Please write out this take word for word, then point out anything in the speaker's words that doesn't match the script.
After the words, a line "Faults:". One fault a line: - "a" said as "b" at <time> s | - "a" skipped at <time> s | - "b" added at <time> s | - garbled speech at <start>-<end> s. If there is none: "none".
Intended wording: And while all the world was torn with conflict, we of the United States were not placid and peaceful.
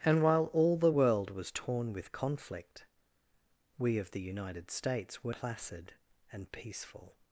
And while all the world was torn with conflict, we of the United States were placid and peaceful.
Faults:
- "not" skipped at 5.3 s